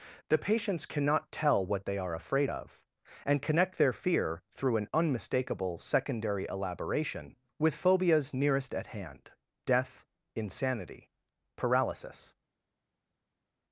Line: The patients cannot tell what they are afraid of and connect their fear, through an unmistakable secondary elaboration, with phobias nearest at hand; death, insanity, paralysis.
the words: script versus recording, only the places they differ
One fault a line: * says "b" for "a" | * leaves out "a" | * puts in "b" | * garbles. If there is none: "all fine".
all fine